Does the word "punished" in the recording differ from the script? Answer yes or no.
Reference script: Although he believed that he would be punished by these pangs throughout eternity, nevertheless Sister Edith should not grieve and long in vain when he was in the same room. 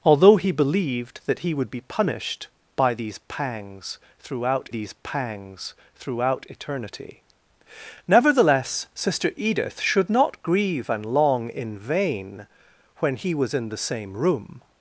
no